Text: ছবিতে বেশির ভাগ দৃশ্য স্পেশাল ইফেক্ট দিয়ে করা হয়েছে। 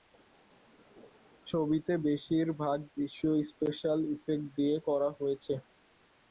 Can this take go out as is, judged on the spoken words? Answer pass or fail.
pass